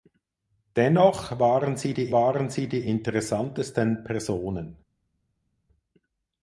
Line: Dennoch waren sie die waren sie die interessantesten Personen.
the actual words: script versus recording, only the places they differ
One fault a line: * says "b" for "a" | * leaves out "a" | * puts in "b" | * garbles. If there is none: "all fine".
all fine